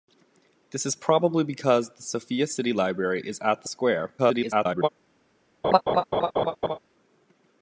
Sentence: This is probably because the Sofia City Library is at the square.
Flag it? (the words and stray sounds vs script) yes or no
yes